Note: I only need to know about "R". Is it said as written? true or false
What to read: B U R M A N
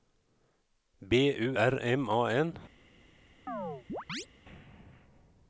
true